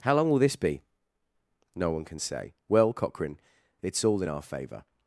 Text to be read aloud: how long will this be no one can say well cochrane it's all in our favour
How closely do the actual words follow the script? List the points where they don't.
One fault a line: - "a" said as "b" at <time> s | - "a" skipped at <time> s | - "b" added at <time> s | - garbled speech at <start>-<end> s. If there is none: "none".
none